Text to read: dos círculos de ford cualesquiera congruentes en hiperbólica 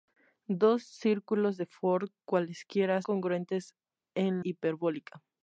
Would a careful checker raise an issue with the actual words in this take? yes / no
no